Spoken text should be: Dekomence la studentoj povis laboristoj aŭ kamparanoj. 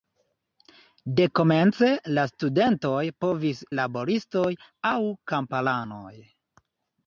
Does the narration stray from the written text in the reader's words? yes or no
no